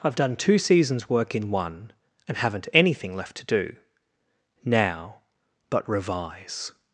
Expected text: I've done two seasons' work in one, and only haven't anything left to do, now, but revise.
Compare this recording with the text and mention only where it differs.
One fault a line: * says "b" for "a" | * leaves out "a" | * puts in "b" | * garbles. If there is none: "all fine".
* leaves out "only"